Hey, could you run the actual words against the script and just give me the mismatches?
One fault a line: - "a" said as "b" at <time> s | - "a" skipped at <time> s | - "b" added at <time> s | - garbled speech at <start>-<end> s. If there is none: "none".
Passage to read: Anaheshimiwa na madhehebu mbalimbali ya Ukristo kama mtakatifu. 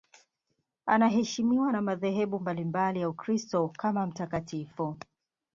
none